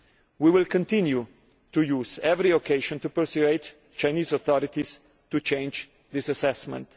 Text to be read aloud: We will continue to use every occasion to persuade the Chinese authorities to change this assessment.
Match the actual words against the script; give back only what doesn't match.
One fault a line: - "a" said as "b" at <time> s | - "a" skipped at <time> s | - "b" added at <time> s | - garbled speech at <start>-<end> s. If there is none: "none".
none